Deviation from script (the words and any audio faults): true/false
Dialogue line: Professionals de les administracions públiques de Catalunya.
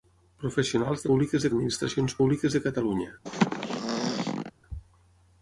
true